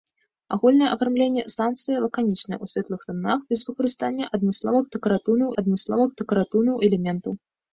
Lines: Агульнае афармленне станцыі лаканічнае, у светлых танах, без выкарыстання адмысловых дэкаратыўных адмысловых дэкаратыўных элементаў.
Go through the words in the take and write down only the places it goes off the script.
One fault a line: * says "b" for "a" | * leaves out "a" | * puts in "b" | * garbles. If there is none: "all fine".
all fine